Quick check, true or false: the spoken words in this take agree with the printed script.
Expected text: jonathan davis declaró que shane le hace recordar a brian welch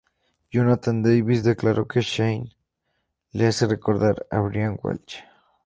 true